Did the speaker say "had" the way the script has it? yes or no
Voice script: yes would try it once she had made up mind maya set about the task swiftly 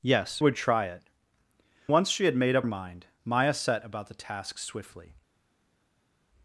yes